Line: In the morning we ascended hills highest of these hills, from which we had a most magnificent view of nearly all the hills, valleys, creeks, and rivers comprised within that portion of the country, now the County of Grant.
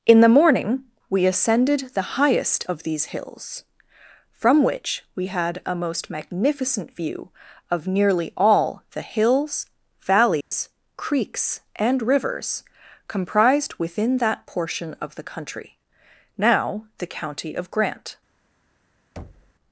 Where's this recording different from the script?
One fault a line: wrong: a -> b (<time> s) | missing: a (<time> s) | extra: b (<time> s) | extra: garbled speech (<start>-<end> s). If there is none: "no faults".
wrong: hills -> the (1.9 s)